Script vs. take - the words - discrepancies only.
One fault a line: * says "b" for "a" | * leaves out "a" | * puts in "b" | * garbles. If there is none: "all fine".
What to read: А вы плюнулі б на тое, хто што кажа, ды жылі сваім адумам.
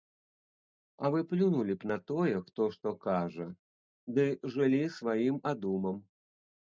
all fine